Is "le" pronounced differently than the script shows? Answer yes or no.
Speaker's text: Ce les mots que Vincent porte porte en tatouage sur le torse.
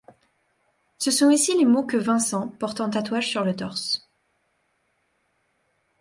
no